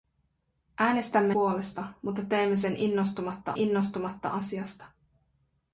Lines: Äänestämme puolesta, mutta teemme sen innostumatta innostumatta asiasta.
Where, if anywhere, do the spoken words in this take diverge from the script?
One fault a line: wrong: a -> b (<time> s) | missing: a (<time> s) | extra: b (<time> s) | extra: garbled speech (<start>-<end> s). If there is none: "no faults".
no faults